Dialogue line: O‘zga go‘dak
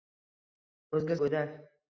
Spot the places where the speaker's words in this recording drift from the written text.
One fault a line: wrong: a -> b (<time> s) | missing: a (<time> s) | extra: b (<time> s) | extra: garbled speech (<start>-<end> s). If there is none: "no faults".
no faults